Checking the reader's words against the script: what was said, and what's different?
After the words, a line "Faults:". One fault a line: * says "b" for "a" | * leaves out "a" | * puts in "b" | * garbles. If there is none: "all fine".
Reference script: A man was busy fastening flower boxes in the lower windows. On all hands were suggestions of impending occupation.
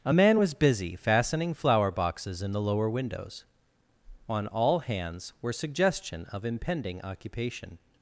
A man was busy fastening flower boxes in the lower windows. On all hands were suggestion of impending occupation.
Faults:
* says "suggestion" for "suggestions"